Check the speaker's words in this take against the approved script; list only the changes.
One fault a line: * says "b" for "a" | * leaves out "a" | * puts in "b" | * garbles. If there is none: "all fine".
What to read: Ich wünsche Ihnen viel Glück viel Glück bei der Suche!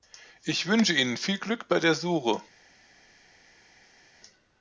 * leaves out "viel Glück"